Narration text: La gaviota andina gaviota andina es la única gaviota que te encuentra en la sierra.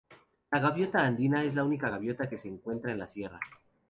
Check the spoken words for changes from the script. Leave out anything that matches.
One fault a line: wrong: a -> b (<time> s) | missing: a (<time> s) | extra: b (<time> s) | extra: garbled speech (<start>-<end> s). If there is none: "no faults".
missing: gaviota andina (1.4 s)
wrong: te -> se (2.4 s)